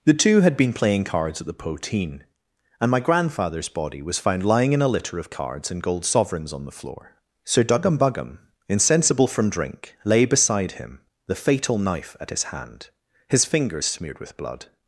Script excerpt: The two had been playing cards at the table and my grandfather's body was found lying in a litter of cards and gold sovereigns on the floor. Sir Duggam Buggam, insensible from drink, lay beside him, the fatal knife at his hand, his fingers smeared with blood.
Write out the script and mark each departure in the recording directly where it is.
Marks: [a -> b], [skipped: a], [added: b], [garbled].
The two had been playing cards at the [table -> poteen] and my grandfather's body was found lying in a litter of cards and gold sovereigns on the floor. Sir Duggam Buggam, insensible from drink, lay beside him, the fatal knife at his hand, his fingers smeared with blood.